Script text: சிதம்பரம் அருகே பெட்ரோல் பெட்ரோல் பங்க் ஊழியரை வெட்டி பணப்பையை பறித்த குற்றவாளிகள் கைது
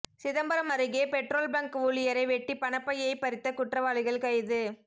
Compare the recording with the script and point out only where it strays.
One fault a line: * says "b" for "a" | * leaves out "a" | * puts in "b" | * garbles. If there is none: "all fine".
* leaves out "பெட்ரோல்"